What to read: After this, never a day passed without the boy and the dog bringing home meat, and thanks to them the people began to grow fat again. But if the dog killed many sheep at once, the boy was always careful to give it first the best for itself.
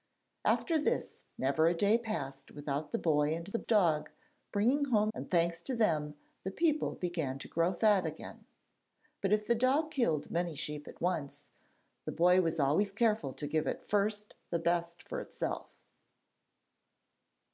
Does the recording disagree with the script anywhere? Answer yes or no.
yes